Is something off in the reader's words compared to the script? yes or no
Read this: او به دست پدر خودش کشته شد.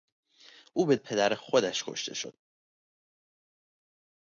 yes